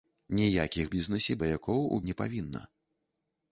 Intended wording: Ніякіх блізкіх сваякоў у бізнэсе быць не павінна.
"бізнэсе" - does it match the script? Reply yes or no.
no